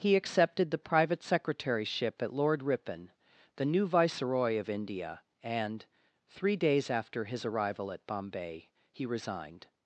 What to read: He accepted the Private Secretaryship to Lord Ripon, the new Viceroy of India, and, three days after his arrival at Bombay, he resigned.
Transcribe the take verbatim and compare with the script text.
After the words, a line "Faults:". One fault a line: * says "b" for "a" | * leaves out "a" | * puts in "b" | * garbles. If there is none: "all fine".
He accepted the Private Secretaryship at Lord Ripon, the new Viceroy of India, and, three days after his arrival at Bombay, he resigned.
Faults:
* says "at" for "to"